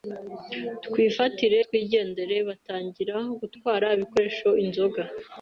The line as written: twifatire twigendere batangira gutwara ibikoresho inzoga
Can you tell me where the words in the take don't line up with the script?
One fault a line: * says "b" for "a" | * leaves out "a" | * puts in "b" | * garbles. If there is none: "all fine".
all fine